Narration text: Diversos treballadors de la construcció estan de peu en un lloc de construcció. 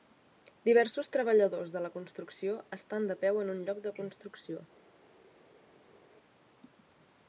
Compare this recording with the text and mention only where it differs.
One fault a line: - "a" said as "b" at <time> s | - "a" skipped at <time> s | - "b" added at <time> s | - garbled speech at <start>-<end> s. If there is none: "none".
none